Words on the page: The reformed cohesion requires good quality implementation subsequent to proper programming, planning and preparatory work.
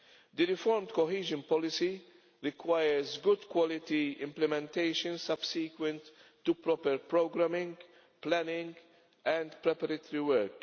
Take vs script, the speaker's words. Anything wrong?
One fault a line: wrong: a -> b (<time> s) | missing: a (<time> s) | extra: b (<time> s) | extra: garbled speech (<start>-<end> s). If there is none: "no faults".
extra: policy (1.4 s)